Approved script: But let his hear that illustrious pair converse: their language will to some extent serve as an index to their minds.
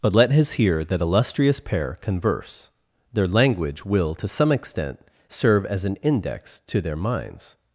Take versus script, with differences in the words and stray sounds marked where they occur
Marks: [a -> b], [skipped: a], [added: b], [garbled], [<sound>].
But let his hear that illustrious pair converse: their language will to some extent serve as an index to their minds.